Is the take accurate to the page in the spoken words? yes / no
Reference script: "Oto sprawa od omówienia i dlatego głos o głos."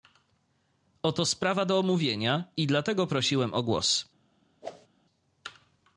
no